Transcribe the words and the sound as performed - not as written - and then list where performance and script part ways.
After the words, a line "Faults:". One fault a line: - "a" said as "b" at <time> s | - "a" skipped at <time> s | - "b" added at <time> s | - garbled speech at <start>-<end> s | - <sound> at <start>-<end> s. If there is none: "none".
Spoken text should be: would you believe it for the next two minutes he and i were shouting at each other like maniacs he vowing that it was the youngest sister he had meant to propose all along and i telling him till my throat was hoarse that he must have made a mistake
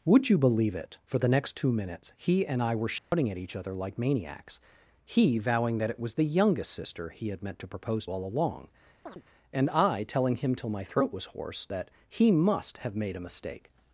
would you believe it for the next two minutes he and i were shouting at each other like maniacs he vowing that it was the youngest sister he had meant to propose all along and i telling him till my throat was hoarse that he must have made a mistake
Faults:
- dropout at 3.0-3.1 s
- chirp at 9.1-9.2 s